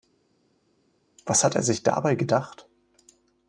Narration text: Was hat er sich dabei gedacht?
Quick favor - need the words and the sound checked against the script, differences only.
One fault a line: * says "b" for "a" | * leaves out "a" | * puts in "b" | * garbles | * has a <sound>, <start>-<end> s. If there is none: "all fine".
all fine